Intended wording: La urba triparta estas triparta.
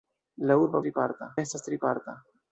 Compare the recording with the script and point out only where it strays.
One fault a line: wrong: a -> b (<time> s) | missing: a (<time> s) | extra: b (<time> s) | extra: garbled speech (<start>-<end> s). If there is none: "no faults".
no faults